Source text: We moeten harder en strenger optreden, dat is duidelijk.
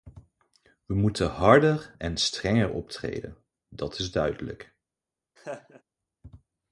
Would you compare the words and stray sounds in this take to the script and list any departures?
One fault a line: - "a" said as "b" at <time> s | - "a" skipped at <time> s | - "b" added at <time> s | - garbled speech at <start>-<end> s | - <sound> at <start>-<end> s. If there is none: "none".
- laugh at 5.4-5.8 s